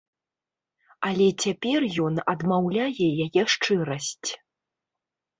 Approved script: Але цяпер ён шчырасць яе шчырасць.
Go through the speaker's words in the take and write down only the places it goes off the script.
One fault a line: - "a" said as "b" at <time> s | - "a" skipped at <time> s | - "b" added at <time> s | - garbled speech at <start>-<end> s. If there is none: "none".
- "шчырасць" said as "адмаўляе" at 2.4 s